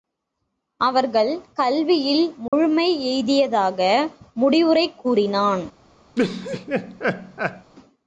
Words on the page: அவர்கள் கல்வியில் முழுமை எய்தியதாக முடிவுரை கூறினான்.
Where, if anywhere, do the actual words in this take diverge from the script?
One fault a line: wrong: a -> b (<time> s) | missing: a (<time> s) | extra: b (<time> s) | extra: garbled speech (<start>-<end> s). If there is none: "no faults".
no faults